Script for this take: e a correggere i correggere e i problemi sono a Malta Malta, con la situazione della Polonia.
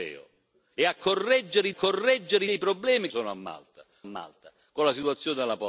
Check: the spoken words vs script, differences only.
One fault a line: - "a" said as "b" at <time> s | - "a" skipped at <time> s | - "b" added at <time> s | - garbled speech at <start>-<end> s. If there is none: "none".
none